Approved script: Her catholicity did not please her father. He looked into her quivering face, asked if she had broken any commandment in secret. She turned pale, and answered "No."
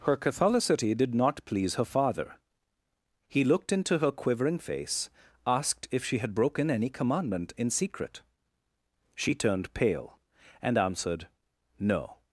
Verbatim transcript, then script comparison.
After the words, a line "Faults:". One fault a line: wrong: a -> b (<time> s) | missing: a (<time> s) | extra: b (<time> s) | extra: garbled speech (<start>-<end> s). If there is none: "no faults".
Her catholicity did not please her father. He looked into her quivering face, asked if she had broken any commandment in secret. She turned pale, and answered "No."
Faults:
no faults